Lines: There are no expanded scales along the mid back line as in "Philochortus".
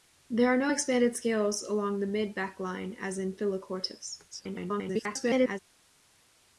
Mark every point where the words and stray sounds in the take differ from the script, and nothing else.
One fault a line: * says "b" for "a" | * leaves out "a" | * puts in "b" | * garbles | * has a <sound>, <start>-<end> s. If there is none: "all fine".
* garbles